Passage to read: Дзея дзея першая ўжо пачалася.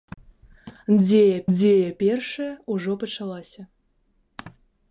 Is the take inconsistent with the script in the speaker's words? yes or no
no